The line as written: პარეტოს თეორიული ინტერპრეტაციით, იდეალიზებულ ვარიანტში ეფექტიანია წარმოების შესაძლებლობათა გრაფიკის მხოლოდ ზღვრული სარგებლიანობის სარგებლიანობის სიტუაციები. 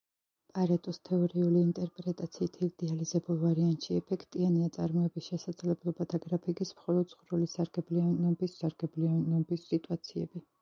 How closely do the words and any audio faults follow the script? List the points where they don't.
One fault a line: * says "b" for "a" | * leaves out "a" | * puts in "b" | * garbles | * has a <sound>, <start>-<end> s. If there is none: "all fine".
all fine